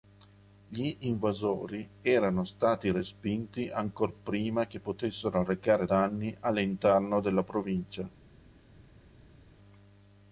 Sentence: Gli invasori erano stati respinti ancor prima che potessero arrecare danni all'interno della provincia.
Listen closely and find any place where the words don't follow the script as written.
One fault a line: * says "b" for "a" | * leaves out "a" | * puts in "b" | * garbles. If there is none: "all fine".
all fine